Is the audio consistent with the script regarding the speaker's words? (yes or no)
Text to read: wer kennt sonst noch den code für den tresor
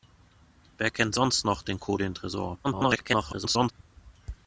no